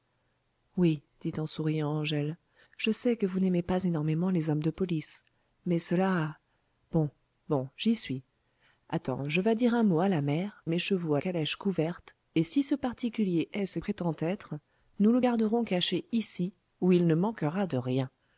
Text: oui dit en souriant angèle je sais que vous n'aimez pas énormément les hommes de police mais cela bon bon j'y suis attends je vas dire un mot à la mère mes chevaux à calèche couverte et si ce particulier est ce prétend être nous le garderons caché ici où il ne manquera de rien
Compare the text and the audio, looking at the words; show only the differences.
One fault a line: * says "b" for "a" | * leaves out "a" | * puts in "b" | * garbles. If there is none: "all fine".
all fine